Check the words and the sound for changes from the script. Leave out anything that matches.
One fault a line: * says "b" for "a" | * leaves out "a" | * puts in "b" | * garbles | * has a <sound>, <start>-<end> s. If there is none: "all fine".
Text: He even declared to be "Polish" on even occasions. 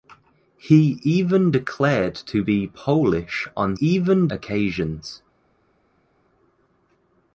all fine